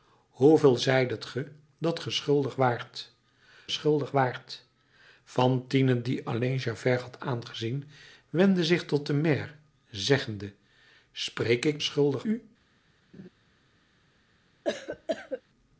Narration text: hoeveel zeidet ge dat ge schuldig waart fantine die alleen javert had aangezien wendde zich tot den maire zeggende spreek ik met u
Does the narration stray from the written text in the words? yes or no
yes